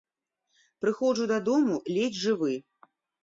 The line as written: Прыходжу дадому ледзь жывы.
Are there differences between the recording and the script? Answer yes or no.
no